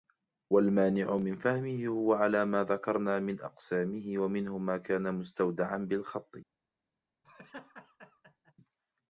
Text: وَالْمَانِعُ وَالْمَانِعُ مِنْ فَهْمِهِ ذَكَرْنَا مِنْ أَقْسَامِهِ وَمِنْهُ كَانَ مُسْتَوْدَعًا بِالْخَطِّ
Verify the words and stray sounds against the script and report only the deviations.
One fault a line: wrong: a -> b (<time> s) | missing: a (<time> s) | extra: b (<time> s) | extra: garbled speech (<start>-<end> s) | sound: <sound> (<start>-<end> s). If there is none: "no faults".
missing: وَالْمَانِعُ (1.2 s)
extra: هُوَ عَلَى مَا (1.9 s)
extra: مَا (4.6 s)
sound: laugh (7.2-8.5 s)